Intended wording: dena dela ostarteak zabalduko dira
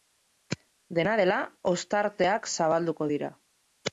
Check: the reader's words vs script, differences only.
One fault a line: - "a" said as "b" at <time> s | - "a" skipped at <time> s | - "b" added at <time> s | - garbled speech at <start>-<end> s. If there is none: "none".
none